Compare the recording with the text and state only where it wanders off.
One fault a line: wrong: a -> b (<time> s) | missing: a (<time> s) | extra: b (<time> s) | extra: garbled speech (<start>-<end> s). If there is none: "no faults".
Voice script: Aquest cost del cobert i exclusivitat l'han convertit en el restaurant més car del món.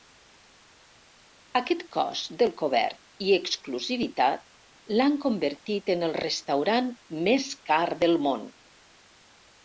no faults